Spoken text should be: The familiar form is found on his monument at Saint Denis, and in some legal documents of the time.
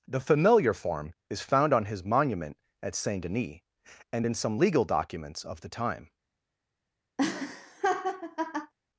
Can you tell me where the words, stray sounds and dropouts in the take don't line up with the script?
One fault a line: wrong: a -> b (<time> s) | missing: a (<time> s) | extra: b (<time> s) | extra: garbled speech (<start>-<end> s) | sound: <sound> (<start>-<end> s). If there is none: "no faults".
sound: laugh (7.2-8.7 s)